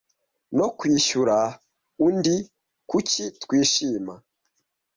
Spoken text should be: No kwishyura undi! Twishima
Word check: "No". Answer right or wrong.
right